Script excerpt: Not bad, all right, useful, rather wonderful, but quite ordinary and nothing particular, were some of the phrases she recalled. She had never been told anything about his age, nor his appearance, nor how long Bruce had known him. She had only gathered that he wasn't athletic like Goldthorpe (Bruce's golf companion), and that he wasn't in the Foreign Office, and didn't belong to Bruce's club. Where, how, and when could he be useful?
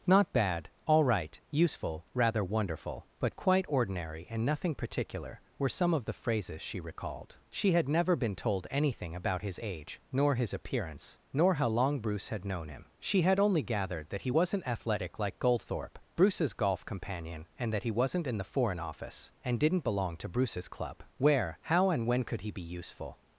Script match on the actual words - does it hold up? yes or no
yes